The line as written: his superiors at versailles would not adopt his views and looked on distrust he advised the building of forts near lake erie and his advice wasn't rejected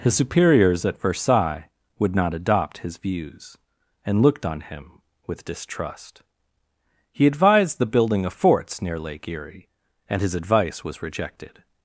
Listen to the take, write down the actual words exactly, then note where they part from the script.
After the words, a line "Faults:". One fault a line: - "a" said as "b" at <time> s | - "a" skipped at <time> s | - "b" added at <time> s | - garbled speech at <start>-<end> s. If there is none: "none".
his superiors at versailles would not adopt his views and looked on him with distrust he advised the building of forts near lake erie and his advice was rejected
Faults:
- "him with" added at 4.6 s
- "wasn't" said as "was" at 10.8 s